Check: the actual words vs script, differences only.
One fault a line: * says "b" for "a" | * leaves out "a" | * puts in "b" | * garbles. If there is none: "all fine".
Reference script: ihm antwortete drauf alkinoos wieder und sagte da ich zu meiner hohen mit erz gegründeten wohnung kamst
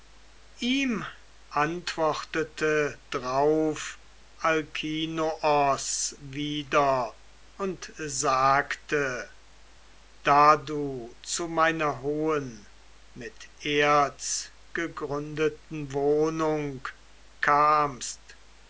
* says "du" for "ich"